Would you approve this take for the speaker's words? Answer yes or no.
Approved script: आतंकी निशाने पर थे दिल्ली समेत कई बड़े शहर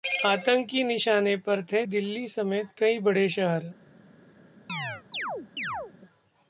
yes